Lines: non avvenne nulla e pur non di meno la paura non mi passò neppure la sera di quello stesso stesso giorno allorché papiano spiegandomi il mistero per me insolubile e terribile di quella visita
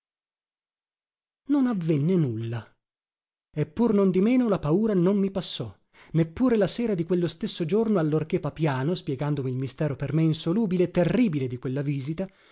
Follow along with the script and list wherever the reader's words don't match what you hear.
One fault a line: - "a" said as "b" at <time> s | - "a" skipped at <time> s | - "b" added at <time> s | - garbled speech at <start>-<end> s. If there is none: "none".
- "stesso" skipped at 7.7 s